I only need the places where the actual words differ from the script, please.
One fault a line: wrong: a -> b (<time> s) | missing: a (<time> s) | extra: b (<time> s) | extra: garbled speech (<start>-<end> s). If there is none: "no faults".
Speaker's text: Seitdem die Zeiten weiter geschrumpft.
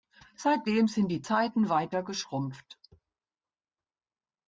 extra: sind (0.9 s)